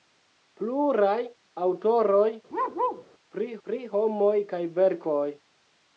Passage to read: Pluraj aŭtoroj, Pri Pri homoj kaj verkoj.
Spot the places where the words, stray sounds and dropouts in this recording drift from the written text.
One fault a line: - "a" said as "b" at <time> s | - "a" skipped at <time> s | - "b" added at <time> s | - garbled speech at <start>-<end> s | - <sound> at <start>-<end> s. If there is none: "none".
- bark at 2.5-3.0 s